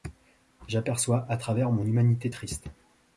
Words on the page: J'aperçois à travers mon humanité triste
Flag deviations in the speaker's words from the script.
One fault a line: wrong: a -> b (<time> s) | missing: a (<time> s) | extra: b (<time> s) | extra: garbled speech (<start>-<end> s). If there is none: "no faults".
no faults